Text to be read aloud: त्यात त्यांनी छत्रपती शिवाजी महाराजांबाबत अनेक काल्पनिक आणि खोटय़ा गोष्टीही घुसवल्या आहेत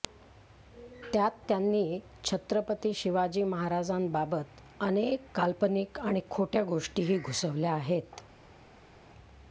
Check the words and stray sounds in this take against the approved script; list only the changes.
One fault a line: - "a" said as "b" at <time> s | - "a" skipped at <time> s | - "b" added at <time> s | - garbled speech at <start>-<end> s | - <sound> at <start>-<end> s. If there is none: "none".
none